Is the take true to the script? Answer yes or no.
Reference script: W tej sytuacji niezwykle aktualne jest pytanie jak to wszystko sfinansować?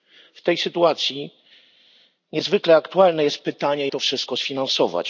no